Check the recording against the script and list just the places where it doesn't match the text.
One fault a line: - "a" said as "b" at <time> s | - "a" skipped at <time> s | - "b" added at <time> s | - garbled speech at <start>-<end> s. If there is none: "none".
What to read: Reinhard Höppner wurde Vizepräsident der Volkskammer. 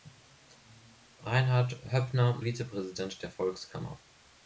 - "wurde" skipped at 2.4 s